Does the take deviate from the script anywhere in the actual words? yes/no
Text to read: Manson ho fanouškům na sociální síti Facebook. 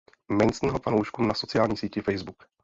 no